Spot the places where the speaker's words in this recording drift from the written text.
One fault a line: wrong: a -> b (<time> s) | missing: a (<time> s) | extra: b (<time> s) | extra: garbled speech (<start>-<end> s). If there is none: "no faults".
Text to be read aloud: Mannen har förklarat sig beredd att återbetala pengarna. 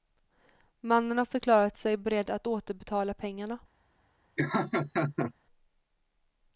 no faults